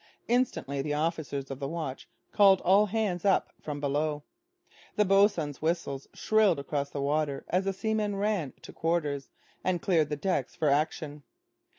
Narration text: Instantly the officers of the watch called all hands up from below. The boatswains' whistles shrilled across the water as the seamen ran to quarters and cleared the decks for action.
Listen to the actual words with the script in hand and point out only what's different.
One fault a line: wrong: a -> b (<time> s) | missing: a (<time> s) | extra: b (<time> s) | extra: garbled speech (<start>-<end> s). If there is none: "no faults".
no faults